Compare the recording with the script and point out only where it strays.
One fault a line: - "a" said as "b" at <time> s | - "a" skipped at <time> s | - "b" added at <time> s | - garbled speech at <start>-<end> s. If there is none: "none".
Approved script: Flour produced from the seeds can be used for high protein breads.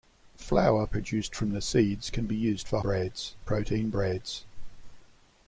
- "high" said as "breads" at 2.8 s